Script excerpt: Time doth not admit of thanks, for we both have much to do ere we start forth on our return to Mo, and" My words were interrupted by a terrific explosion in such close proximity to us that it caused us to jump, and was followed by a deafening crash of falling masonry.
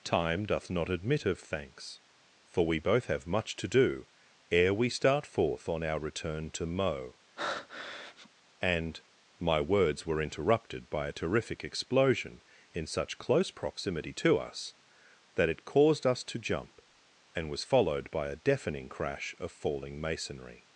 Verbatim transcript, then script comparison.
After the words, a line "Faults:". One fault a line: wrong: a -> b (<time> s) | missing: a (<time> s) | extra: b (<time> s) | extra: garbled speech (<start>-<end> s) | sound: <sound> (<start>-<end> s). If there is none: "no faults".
Time doth not admit of thanks, for we both have much to do ere we start forth on our return to Mo, and" My words were interrupted by a terrific explosion in such close proximity to us that it caused us to jump, and was followed by a deafening crash of falling masonry.
Faults:
sound: breath (7.4-8.3 s)